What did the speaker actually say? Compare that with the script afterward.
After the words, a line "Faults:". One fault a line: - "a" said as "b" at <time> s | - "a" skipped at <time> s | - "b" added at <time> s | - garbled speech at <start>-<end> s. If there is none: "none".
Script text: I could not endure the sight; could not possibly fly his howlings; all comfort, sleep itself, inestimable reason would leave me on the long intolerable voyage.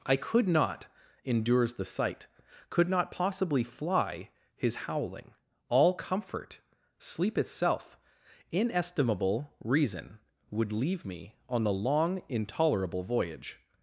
I could not endures the sight; could not possibly fly his howling; all comfort, sleep itself, inestimable reason would leave me on the long intolerable voyage.
Faults:
- "endure" said as "endures" at 1.2 s
- "howlings" said as "howling" at 4.9 s